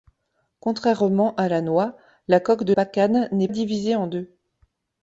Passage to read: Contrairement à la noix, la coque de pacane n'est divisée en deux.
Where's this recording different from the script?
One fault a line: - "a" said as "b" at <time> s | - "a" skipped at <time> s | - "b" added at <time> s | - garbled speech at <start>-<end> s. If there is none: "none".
none